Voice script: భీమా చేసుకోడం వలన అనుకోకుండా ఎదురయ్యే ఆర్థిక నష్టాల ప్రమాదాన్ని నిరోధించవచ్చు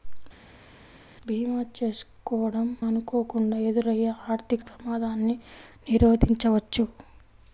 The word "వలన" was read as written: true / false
false